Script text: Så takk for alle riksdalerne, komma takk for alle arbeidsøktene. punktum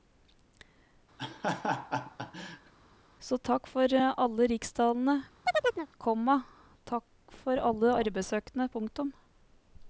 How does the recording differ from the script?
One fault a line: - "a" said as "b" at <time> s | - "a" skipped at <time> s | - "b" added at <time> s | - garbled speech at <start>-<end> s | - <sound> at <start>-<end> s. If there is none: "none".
- laugh at 1.2-2.7 s
- chirp at 5.4-5.9 s